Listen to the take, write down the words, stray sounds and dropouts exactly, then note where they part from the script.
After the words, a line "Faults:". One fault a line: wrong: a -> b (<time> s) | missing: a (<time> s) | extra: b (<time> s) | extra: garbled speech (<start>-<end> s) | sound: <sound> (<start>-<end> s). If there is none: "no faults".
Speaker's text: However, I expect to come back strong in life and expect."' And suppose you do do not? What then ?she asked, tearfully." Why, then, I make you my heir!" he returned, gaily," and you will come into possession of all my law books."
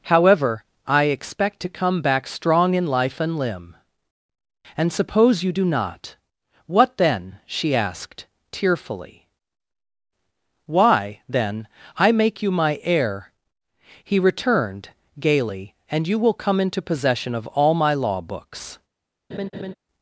However, I expect to come back strong in life and limb."' And suppose you do not? What then ?she asked, tearfully." Why, then, I make you my heir!" he returned, gaily," and you will come into possession of all my law books."
Faults:
wrong: expect -> limb (3.4 s)
missing: do (5.6 s)
sound: laugh (19.3-19.7 s)